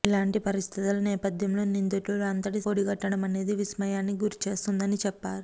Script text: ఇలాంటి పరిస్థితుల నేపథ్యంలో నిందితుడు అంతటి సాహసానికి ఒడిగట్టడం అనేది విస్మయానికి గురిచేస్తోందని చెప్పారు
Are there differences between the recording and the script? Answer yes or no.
yes